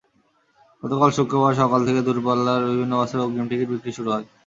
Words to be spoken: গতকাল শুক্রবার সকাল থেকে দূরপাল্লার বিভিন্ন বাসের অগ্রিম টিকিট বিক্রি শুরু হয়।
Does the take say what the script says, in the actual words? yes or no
yes